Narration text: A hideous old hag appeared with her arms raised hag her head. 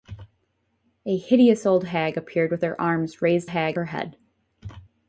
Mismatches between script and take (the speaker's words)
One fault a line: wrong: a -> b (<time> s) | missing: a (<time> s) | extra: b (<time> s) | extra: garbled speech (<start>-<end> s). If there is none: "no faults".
no faults